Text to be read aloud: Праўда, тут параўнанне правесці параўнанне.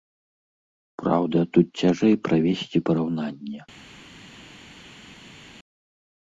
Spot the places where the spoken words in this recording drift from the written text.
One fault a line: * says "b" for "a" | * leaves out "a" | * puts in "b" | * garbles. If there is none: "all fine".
* says "цяжэй" for "параўнанне"